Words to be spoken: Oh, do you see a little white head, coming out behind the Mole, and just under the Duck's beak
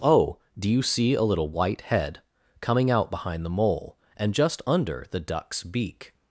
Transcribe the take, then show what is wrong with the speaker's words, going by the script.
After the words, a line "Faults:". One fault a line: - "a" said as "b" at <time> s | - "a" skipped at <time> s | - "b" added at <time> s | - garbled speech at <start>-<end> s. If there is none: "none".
Oh, do you see a little white head, coming out behind the Mole, and just under the Duck's beak
Faults:
none